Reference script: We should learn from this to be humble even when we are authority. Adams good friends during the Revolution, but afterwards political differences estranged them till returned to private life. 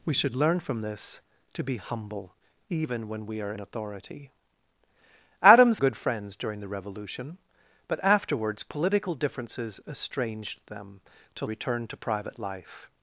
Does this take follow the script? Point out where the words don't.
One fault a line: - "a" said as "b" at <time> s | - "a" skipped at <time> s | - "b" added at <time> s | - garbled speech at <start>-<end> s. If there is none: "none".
none